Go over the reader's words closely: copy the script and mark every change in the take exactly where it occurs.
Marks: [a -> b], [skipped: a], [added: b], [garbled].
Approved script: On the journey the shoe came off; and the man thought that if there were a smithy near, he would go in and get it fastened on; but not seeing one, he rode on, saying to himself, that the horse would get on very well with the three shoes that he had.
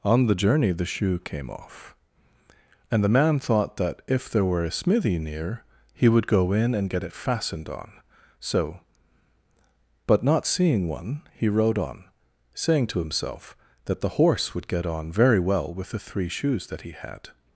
On the journey the shoe came off; and the man thought that if there were a smithy near, he would go in and get it fastened on; [added: so] but not seeing one, he rode on, saying to himself, that the horse would get on very well with the three shoes that he had.